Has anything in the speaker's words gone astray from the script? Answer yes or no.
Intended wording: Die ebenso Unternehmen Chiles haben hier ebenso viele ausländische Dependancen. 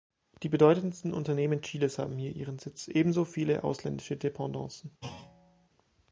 yes